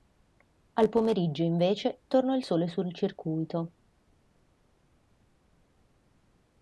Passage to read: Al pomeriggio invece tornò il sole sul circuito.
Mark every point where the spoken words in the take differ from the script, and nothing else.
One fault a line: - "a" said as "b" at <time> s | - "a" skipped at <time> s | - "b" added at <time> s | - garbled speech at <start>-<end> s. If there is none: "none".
none